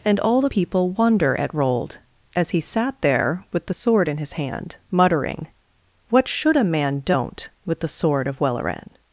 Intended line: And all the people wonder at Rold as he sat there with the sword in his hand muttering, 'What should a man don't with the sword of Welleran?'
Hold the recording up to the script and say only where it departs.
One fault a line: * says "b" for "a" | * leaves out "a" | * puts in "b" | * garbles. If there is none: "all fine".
all fine